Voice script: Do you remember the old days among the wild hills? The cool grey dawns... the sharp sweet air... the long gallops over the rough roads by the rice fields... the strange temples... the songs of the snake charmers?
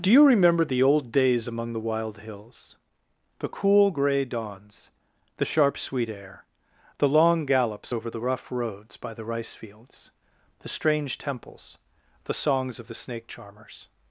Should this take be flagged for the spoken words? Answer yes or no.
no